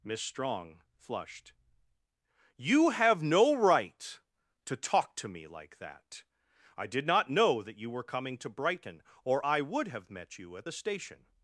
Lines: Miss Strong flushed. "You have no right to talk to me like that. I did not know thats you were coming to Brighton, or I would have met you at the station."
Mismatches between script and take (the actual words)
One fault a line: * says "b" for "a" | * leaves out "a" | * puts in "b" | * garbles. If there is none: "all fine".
* says "that" for "thats"